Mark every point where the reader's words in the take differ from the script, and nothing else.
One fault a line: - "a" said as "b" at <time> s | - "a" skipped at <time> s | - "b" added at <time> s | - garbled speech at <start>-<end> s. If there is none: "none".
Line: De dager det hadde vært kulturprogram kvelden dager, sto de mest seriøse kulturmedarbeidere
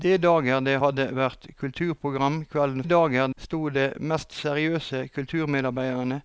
none